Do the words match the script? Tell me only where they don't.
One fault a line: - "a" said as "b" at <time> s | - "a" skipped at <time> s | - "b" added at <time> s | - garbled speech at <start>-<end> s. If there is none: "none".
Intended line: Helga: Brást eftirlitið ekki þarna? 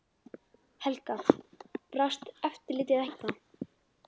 - "ekki" skipped at 3.0 s